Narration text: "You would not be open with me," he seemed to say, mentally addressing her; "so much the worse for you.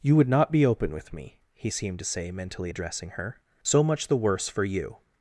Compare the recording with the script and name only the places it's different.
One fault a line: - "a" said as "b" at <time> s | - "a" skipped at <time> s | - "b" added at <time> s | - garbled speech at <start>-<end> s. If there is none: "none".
none